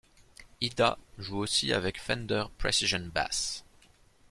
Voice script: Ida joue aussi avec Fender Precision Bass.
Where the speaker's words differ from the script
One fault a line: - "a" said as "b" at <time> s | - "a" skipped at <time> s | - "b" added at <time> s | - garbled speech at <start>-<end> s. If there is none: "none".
none